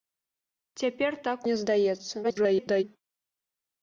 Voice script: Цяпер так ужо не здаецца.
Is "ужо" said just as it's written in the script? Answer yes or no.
no